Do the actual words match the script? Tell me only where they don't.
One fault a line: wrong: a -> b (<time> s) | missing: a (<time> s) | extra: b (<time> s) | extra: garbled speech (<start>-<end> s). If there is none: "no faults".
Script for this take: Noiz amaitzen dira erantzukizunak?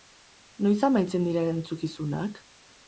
no faults